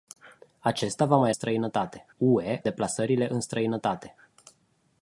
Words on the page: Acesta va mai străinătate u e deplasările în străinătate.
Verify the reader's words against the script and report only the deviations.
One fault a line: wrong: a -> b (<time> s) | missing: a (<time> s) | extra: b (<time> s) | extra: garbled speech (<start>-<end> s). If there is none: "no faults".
no faults